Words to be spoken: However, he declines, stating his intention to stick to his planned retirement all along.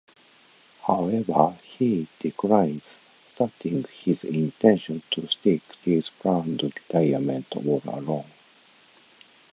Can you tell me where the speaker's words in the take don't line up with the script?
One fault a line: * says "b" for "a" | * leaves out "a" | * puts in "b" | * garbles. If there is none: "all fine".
* leaves out "to"